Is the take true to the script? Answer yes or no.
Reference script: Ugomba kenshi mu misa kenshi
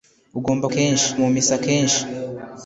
yes